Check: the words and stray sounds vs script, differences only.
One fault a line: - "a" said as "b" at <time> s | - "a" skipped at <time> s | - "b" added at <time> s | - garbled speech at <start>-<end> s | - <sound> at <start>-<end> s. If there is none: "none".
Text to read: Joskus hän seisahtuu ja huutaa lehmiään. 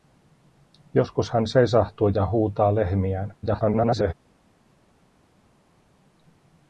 - garbled speech at 3.4-4.1 s